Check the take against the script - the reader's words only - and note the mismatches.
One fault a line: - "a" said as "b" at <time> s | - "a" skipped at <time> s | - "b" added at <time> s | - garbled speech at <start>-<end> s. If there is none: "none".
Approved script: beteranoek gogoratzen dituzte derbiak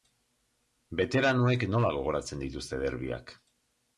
- "nola" added at 1.7 s